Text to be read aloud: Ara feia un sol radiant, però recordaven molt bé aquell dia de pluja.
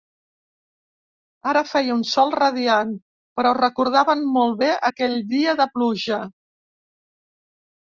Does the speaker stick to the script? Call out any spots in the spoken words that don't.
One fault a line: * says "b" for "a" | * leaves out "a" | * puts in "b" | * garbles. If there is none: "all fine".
all fine